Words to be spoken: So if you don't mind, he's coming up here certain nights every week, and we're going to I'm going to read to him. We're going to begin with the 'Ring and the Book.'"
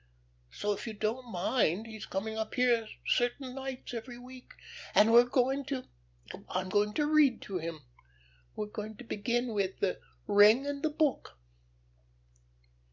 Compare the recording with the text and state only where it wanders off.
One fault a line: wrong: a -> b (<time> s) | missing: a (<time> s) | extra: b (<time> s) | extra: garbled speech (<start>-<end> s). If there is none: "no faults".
no faults